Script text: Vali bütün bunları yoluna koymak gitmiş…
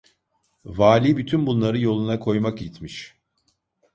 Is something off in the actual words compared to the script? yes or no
no